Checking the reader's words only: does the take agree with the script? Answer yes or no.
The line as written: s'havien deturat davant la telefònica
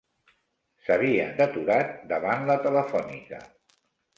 yes